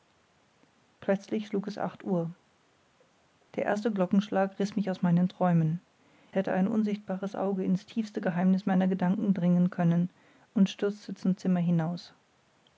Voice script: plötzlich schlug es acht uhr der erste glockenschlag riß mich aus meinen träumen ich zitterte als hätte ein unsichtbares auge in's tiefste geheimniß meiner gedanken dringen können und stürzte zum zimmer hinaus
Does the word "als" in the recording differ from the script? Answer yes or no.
yes